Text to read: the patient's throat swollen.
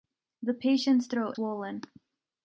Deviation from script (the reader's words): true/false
false